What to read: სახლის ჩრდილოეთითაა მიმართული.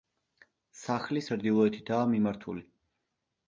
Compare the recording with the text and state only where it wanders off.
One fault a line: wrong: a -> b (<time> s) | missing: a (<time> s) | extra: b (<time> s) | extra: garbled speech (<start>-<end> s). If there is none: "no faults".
no faults